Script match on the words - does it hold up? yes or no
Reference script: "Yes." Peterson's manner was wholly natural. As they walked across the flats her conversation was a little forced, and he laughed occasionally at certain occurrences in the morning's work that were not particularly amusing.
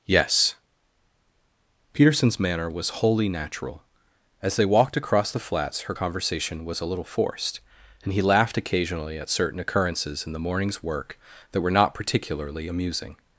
yes